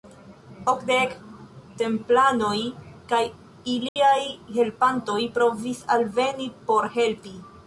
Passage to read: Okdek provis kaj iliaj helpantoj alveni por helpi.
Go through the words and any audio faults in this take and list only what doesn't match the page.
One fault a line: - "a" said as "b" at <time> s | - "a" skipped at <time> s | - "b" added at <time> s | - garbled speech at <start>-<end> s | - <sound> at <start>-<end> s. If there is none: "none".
- "provis" said as "templanoj" at 1.8 s
- dropout at 3.9-4.0 s
- "provis" added at 5.4 s